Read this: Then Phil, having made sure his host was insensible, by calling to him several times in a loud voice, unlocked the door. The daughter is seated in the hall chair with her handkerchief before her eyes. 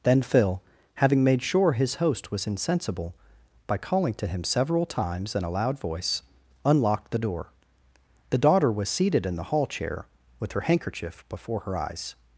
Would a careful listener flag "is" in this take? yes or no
yes